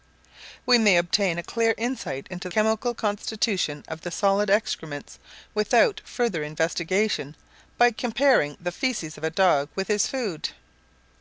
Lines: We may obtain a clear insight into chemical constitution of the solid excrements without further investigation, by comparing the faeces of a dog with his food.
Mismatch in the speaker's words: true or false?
false